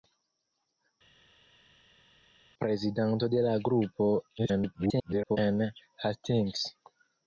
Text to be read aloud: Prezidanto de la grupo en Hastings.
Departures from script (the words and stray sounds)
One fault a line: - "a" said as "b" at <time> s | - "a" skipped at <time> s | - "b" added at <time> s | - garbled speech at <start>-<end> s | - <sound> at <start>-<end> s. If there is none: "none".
- garbled speech at 4.4-5.4 s